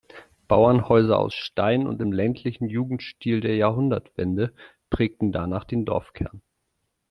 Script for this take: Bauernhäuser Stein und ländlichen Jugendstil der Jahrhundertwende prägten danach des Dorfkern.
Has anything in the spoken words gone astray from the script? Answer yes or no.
yes